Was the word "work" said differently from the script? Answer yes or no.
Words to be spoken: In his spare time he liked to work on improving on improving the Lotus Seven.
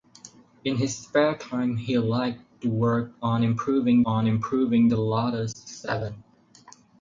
no